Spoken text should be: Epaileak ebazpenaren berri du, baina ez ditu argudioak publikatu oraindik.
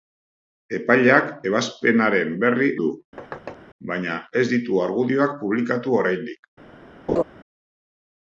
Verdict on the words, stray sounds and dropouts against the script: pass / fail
fail